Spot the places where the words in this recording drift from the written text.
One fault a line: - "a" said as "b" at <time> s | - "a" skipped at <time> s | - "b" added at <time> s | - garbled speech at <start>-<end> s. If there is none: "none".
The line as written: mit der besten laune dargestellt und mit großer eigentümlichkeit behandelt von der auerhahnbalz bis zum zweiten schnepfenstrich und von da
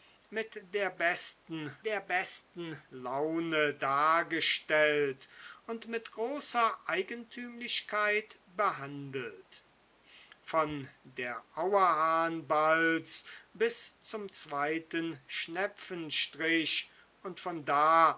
- "der besten" added at 1.8 s